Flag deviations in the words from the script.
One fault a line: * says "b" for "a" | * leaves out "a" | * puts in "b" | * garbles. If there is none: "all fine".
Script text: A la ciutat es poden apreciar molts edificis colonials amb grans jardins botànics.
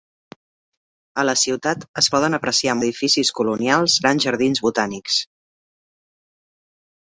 * leaves out "molts"
* leaves out "amb"